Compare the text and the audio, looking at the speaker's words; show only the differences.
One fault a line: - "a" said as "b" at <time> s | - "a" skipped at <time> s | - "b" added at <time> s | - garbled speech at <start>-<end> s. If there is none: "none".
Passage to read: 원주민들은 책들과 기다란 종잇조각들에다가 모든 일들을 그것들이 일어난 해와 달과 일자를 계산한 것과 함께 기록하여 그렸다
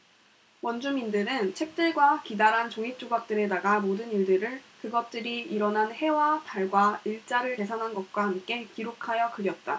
none